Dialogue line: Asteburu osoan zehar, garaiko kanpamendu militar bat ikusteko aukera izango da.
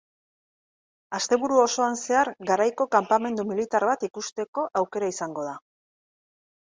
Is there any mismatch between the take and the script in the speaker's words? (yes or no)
no